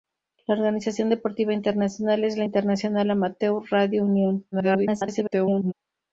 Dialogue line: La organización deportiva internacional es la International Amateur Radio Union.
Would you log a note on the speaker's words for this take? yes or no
yes